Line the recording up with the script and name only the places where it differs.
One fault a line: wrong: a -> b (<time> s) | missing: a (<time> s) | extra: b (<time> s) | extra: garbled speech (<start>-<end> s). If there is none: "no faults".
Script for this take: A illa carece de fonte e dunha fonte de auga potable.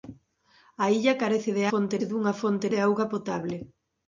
no faults